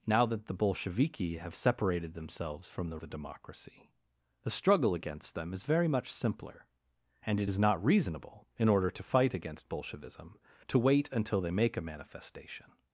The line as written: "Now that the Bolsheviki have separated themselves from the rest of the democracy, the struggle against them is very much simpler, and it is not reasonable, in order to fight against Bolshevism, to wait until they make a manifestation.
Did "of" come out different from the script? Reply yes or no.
yes